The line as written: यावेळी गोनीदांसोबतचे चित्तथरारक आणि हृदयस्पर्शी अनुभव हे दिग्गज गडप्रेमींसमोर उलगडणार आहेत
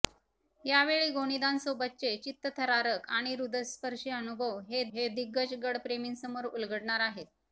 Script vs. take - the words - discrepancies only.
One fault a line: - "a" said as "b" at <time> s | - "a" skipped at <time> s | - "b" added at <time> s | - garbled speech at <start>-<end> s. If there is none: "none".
- "हे" added at 4.9 s